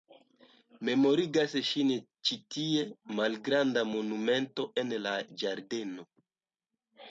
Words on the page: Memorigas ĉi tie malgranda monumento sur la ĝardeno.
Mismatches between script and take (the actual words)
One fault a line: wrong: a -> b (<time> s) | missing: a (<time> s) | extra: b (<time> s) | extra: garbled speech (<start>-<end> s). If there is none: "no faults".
extra: ŝin (1.7 s)
wrong: sur -> en (4.9 s)